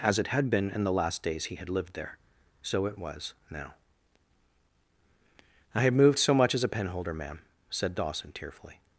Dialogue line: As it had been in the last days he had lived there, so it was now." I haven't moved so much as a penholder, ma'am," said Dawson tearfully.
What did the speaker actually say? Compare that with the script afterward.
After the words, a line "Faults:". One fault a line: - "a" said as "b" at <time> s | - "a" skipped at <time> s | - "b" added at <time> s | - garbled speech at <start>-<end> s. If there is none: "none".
As it had been in the last days he had lived there, so it was now." I have moved so much as a penholder, ma'am," said Dawson tearfully.
Faults:
- "haven't" said as "have" at 5.8 s